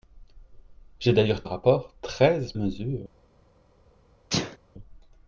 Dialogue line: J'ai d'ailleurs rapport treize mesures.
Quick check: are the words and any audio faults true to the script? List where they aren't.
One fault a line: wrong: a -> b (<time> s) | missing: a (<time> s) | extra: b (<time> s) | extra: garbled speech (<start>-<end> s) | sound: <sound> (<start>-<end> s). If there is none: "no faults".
sound: sneeze (4.3-4.6 s)